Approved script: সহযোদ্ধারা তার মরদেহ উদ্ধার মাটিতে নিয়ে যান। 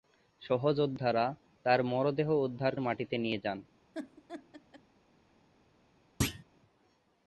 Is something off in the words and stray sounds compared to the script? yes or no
yes